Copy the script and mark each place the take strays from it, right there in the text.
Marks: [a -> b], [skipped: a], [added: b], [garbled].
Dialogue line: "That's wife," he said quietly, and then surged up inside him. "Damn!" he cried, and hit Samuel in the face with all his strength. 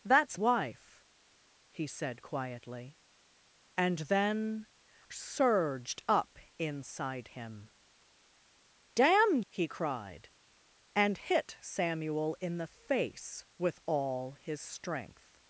"That's wife," he said quietly, and then surged up inside him. "Damn!" he cried, and hit Samuel in the face with all his strength.